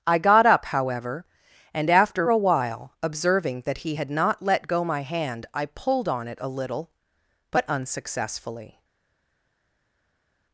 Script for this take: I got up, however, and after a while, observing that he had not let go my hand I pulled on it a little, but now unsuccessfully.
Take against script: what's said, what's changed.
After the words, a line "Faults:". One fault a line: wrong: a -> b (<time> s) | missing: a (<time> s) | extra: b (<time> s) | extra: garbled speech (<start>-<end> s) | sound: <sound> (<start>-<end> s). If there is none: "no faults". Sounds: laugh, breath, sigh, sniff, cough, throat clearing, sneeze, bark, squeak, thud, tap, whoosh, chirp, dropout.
I got up, however, and after a while, observing that he had not let go my hand I pulled on it a little, but unsuccessfully.
Faults:
missing: now (7.6 s)